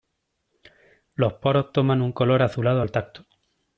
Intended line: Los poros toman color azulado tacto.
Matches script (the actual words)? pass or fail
fail